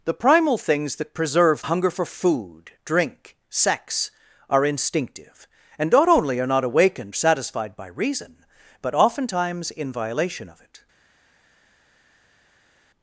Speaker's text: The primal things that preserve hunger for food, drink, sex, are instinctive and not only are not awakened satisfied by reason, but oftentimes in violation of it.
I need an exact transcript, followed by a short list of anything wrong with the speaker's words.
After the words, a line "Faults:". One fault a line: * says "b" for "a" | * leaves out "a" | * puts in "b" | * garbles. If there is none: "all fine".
The primal things that preserve hunger for food, drink, sex, are instinctive and not only are not awakened satisfied by reason, but oftentimes in violation of it.
Faults:
all fine